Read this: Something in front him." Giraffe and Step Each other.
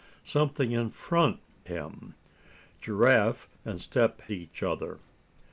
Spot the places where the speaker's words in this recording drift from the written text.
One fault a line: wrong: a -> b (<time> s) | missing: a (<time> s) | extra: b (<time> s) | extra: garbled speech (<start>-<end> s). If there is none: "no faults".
no faults